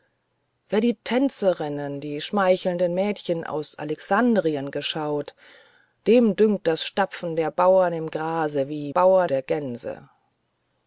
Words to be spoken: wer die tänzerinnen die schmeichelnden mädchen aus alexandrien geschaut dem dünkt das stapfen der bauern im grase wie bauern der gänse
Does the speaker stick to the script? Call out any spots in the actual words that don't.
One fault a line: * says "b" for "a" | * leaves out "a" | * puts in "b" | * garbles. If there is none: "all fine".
all fine